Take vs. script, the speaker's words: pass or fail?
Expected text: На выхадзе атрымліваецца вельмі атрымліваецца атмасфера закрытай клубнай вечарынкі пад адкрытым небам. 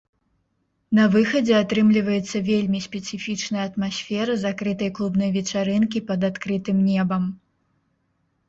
fail